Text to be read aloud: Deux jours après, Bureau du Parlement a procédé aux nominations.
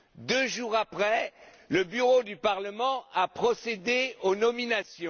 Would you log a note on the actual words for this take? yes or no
yes